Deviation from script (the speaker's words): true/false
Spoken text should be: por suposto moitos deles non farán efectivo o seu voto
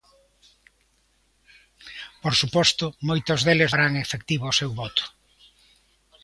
true